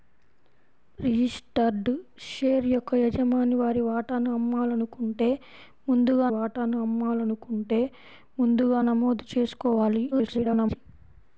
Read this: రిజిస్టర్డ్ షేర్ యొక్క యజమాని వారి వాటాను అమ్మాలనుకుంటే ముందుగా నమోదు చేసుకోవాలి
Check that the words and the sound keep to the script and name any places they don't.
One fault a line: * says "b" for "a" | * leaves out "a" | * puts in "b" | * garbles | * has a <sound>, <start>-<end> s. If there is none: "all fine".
* puts in "వాటాను అమ్మాలనుకుంటే ముందుగా"
* garbles